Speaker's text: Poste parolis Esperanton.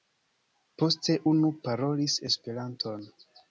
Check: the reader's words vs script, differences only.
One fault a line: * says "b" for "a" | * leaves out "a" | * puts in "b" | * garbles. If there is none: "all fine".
* puts in "unu"